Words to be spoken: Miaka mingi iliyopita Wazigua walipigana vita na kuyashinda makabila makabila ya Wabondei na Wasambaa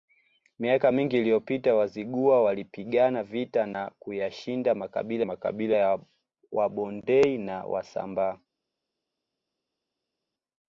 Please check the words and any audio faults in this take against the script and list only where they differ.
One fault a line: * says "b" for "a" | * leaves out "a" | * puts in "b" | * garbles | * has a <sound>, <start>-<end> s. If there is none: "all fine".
all fine